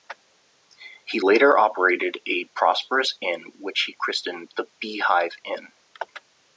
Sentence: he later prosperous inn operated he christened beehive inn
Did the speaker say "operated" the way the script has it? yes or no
no